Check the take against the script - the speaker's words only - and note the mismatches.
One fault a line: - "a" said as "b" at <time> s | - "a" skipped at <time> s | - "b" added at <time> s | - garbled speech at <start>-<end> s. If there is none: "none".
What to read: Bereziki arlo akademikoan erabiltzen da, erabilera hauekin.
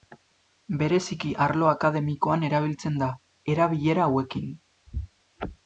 none